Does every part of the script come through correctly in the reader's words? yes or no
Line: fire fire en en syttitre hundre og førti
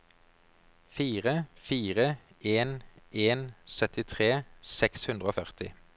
no